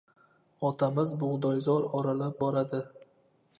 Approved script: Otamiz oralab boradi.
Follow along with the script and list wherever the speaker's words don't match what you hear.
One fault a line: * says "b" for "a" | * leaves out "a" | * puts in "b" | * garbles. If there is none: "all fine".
* puts in "bug‘doyzor"